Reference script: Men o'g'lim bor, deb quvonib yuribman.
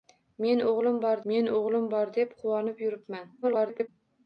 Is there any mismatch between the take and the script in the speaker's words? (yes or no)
yes